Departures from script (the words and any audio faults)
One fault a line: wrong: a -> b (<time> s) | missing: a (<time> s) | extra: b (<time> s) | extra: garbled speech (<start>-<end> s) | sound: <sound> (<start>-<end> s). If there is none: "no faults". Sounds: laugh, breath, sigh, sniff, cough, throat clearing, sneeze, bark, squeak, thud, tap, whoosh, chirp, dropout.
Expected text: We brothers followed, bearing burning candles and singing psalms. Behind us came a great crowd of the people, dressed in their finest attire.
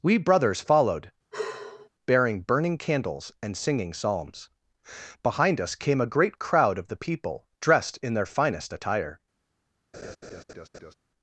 sound: sigh (1.3-1.9 s)
sound: laugh (9.9-10.9 s)